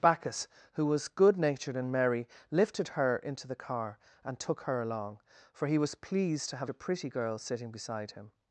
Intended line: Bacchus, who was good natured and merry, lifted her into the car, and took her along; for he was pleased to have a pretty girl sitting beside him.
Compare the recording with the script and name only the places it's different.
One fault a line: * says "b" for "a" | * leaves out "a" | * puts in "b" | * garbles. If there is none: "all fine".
all fine